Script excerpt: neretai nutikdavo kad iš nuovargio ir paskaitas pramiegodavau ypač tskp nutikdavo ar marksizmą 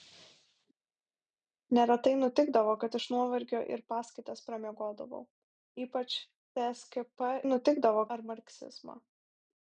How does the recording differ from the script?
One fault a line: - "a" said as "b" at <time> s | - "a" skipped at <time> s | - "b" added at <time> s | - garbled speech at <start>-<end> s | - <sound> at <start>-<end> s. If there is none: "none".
none